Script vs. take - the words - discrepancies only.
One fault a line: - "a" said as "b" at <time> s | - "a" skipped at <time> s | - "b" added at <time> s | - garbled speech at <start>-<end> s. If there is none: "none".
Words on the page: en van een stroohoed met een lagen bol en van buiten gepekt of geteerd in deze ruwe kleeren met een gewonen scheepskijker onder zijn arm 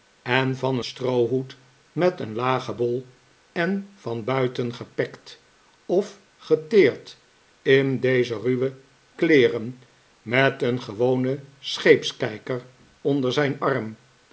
- "een" skipped at 0.8 s